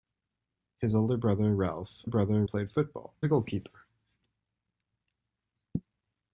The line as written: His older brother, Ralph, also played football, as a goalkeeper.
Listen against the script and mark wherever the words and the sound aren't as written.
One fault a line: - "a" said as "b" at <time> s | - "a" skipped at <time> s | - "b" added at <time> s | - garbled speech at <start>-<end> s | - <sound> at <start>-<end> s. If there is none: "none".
- "also" said as "brother" at 2.1 s
- "as" skipped at 3.1 s